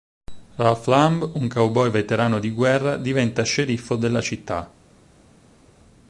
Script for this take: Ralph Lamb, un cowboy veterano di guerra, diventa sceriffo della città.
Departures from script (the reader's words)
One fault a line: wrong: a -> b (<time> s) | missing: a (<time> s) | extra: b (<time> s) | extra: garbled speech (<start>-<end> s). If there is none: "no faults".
no faults